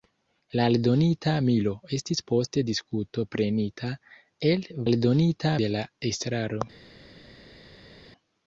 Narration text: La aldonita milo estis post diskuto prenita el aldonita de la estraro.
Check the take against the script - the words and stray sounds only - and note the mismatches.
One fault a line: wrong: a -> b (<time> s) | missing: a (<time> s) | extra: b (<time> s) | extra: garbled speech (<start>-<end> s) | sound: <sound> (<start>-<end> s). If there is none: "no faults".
no faults